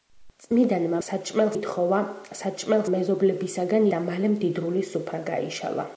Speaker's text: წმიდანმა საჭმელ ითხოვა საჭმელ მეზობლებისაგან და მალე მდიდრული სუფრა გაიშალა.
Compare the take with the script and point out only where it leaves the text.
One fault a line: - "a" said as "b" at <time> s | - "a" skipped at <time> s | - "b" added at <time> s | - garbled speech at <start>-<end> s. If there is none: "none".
none